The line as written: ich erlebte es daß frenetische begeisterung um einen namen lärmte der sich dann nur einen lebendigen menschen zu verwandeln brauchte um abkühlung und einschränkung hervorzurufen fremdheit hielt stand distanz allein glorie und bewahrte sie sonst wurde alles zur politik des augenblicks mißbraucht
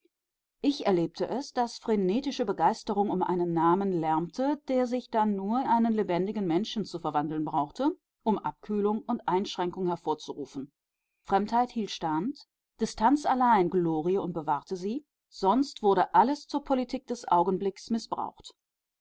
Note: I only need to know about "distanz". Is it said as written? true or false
true